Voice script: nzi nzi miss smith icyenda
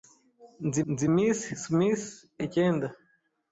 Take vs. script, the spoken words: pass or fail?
pass